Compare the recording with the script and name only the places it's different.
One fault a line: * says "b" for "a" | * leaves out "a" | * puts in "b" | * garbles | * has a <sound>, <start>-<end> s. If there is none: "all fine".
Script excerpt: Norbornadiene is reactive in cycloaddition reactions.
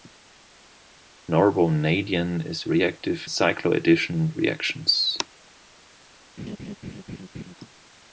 * leaves out "in"
* has a laugh, 6.4-7.5 s